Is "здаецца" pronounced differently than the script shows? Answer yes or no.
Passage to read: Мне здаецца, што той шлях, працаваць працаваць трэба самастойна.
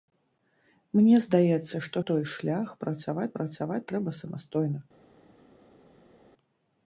no